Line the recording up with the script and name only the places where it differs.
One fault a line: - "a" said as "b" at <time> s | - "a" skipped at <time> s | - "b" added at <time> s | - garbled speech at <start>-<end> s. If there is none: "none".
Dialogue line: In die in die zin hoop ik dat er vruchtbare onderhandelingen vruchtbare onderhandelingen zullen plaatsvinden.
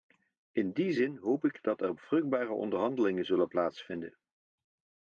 - "in die" skipped at 0.9 s
- "vruchtbare onderhandelingen" skipped at 3.2 s